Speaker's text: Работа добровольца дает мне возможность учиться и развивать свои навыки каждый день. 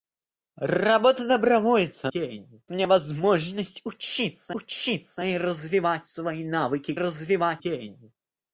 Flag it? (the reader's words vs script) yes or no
yes